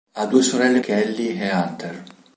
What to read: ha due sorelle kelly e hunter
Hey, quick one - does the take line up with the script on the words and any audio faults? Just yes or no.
yes